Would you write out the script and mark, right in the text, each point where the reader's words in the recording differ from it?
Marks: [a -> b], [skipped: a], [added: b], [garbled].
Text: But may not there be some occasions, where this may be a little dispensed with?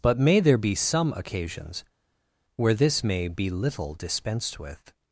But may [skipped: not] there be some occasions, where this may be [skipped: a] little dispensed with?